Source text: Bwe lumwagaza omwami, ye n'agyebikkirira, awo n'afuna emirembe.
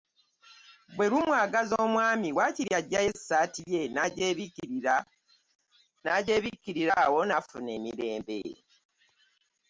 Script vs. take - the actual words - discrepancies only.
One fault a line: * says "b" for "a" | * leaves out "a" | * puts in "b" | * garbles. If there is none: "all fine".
* puts in "waakiri aggyayo essaati"